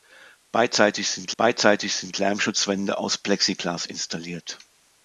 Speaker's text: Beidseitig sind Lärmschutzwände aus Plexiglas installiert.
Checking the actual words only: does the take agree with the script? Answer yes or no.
no